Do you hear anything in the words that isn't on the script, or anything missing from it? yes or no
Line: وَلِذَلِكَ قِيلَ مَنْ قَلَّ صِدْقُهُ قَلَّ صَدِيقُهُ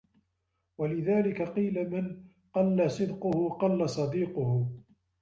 no